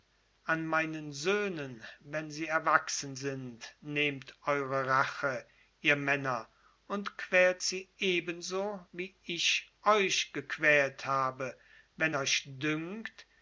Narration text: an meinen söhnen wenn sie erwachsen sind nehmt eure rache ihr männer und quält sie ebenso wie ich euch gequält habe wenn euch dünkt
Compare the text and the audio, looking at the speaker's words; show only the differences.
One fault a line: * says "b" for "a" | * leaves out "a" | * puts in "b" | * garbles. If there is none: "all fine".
all fine